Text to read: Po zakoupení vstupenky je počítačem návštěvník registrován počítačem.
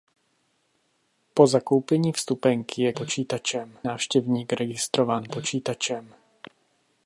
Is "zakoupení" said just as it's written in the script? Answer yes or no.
yes